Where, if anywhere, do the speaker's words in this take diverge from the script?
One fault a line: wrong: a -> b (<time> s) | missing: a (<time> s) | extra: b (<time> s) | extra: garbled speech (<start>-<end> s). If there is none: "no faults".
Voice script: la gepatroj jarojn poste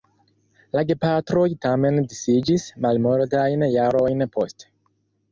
extra: tamen disiĝis malmultajn (1.6 s)